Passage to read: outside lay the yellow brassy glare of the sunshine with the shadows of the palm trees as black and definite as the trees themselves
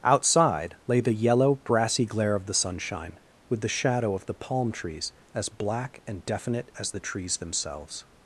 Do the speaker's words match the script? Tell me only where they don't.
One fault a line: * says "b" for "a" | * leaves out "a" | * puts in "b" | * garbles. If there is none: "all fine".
* says "shadow" for "shadows"